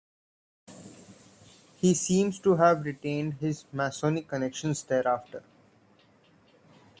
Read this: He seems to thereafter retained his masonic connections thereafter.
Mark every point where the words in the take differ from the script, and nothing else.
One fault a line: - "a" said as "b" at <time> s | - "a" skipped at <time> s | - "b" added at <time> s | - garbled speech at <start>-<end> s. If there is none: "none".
- "thereafter" said as "have" at 2.5 s